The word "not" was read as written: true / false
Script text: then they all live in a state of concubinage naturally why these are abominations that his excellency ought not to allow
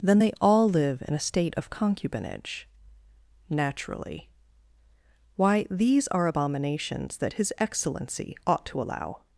false